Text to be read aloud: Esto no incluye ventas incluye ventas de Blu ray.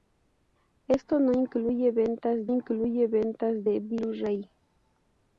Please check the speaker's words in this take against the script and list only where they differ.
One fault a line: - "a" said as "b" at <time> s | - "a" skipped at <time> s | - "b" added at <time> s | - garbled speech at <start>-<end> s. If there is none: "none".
none